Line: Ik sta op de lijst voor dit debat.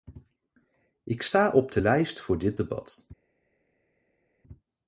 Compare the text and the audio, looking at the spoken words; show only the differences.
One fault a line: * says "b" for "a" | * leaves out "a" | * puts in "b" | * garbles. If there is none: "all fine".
all fine